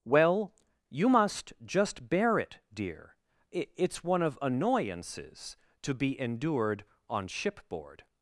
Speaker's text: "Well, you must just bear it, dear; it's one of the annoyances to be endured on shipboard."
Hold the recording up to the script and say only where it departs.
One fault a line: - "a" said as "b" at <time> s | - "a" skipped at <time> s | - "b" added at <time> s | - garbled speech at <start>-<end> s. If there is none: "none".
- "the" skipped at 4.4 s